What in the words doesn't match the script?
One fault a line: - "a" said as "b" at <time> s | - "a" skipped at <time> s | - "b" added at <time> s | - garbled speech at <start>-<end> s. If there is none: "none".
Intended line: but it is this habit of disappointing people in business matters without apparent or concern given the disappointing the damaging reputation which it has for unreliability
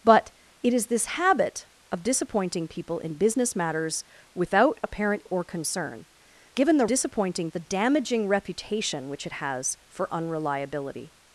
none